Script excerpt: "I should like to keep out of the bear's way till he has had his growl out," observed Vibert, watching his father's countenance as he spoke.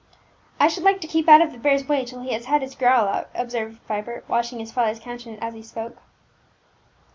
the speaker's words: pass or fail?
pass